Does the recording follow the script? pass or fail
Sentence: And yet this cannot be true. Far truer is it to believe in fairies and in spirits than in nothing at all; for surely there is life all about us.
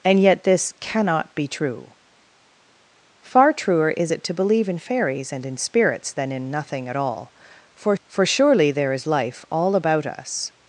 fail